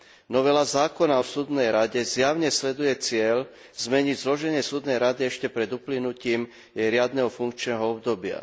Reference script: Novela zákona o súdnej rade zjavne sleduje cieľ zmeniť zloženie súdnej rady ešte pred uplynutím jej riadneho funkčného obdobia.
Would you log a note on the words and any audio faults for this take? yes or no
no